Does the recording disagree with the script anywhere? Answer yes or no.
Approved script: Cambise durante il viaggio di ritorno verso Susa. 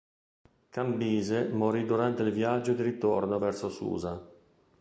yes